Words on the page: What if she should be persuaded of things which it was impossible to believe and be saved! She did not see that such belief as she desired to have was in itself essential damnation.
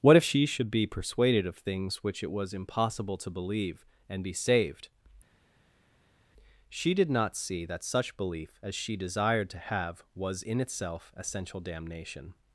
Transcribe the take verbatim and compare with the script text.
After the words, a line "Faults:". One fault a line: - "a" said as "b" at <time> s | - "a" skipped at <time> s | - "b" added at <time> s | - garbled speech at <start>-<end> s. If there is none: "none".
What if she should be persuaded of things which it was impossible to believe and be saved! She did not see that such belief as she desired to have was in itself essential damnation.
Faults:
none